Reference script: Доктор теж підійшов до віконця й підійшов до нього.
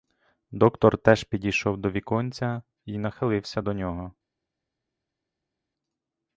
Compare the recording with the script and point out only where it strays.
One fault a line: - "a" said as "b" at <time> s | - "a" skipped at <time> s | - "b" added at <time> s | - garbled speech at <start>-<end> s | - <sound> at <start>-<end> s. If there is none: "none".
- "підійшов" said as "нахилився" at 3.0 s